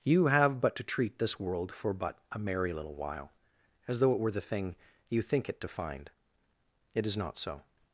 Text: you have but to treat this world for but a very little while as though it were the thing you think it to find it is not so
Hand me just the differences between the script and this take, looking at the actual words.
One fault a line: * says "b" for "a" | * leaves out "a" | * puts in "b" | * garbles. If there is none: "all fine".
* says "merry" for "very"